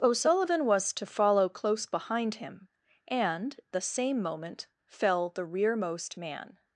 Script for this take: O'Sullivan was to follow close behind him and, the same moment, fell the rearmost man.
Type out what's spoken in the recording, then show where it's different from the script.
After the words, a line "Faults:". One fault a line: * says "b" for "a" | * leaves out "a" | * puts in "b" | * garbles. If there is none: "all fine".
O'Sullivan was to follow close behind him and, the same moment, fell the rearmost man.
Faults:
all fine